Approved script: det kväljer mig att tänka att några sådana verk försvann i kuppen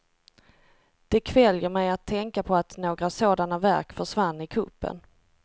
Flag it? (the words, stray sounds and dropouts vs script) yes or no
yes